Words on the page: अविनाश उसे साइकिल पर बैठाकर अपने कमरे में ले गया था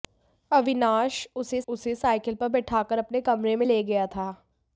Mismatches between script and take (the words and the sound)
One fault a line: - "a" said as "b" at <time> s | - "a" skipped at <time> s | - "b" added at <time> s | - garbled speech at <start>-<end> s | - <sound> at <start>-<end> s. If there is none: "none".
- "उसे" added at 1.7 s